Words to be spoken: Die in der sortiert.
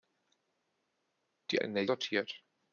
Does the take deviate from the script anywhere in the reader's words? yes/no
no